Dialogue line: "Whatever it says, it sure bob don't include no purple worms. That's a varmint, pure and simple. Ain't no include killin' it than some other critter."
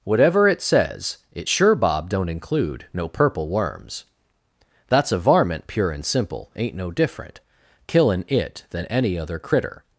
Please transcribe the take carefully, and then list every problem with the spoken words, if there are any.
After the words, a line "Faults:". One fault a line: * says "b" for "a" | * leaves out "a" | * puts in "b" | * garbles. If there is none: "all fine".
"Whatever it says, it sure bob don't include no purple worms. That's a varmint, pure and simple. Ain't no different killin' it than any other critter."
Faults:
* says "different" for "include"
* says "any" for "some"